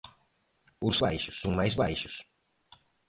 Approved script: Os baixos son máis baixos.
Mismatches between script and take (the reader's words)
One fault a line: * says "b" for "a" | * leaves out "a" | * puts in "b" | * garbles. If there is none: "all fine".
all fine